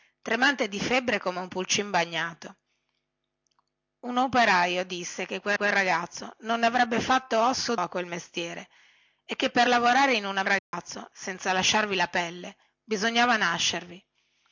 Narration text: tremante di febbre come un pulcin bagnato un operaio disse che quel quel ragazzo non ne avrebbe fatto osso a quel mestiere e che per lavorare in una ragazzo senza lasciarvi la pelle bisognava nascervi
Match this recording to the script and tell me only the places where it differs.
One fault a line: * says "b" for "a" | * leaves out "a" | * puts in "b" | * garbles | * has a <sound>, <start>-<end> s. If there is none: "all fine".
* has a dropout, 10.6-10.7 s